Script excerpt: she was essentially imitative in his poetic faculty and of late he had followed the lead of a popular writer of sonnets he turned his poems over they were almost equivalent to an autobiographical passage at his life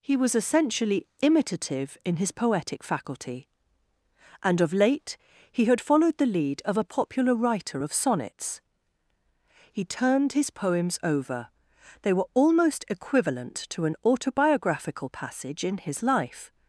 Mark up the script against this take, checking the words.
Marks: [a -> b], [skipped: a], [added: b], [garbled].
[she -> he] was essentially imitative in his poetic faculty and of late he had followed the lead of a popular writer of sonnets he turned his poems over they were almost equivalent to an autobiographical passage [at -> in] his life